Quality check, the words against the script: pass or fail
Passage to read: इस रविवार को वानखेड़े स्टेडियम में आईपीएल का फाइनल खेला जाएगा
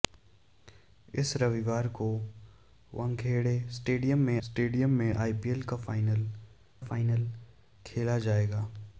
fail